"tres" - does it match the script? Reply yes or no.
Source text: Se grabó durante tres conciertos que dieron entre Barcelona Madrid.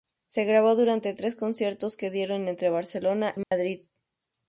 yes